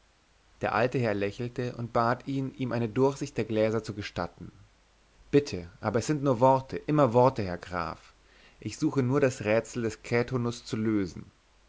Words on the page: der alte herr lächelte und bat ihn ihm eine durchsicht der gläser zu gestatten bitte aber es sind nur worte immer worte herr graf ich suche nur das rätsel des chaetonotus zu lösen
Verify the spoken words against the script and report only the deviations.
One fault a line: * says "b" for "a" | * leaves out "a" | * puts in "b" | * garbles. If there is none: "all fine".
all fine